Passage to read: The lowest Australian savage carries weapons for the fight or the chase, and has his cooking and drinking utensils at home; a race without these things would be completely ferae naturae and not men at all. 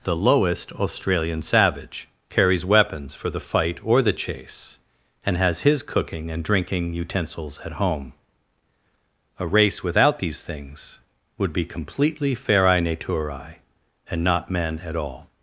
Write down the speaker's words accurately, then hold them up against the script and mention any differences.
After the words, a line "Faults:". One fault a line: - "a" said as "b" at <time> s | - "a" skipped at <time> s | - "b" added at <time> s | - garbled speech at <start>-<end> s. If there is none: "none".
The lowest Australian savage carries weapons for the fight or the chase, and has his cooking and drinking utensils at home; a race without these things would be completely ferae naturae and not men at all.
Faults:
none